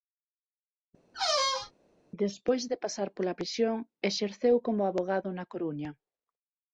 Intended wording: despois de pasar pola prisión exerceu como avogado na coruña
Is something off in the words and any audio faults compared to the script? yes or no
yes